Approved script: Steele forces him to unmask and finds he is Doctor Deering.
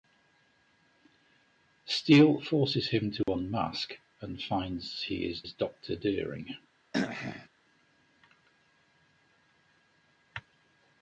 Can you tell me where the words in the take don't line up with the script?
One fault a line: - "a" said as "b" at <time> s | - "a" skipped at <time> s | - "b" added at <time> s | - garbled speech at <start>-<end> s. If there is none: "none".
- "is" added at 5.4 s